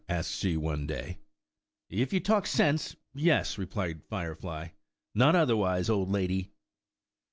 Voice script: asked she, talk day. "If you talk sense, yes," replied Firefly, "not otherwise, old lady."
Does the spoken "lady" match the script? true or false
true